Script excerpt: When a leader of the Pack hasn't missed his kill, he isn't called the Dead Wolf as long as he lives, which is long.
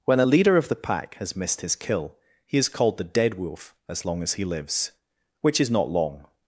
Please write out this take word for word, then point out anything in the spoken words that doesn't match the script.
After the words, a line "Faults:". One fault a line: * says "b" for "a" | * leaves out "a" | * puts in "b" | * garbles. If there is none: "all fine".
When a leader of the Pack has missed his kill, he is called the Dead Wolf as long as he lives, which is not long.
Faults:
* says "has" for "hasn't"
* says "is" for "isn't"
* puts in "not"